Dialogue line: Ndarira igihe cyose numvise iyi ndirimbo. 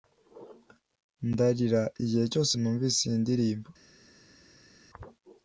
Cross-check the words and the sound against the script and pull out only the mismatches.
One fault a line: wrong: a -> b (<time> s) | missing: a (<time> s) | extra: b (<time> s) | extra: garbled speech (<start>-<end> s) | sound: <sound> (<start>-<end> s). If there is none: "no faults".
no faults